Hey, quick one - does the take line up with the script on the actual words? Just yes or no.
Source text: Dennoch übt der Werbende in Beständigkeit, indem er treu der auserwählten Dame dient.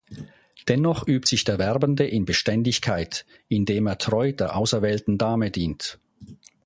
no